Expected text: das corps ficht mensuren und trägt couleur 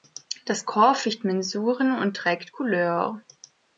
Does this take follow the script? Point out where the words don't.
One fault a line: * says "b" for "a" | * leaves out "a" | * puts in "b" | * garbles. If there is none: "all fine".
all fine